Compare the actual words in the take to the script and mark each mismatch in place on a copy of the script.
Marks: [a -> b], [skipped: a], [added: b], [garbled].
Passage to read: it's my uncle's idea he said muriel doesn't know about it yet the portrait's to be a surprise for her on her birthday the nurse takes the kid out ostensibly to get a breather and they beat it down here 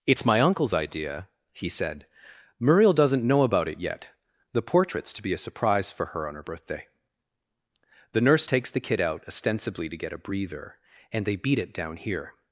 it's my uncle's idea he said muriel doesn't know about it yet the portrait's to be a surprise for her on her birthday the nurse takes the kid out ostensibly to get a breather and they beat it down here